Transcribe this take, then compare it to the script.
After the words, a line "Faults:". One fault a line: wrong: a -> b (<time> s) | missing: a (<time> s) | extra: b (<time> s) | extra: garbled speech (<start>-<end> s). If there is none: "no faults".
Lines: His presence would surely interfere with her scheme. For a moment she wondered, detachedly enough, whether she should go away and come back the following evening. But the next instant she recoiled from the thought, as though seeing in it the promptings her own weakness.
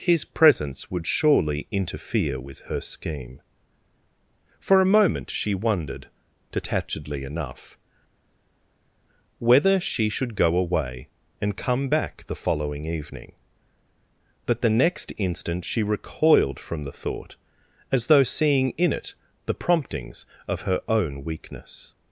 His presence would surely interfere with her scheme. For a moment she wondered, detachedly enough, whether she should go away and come back the following evening. But the next instant she recoiled from the thought, as though seeing in it the promptings of her own weakness.
Faults:
extra: of (20.5 s)